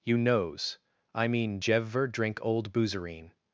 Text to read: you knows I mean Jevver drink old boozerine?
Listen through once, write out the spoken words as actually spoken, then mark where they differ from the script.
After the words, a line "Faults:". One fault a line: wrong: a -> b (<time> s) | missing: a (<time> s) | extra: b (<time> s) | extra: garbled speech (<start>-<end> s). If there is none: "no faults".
you knows I mean Jevver drink old boozerine?
Faults:
no faults